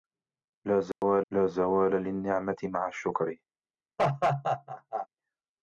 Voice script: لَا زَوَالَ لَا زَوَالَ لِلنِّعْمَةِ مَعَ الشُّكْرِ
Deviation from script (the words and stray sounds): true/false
true